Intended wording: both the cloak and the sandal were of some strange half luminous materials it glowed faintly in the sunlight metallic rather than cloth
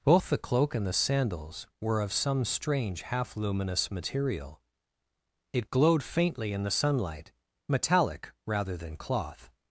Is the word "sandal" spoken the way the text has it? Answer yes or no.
no